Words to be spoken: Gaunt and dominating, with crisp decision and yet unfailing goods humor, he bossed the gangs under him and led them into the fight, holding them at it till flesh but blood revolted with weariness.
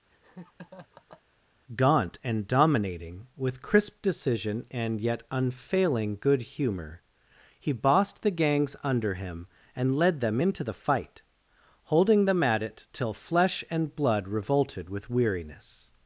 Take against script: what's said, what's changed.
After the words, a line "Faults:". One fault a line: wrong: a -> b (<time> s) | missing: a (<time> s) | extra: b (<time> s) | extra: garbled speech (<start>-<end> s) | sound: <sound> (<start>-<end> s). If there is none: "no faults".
Gaunt and dominating, with crisp decision and yet unfailing good humor, he bossed the gangs under him and led them into the fight, holding them at it till flesh and blood revolted with weariness.
Faults:
sound: laugh (0.1-1.2 s)
wrong: goods -> good (6.2 s)
wrong: but -> and (13.7 s)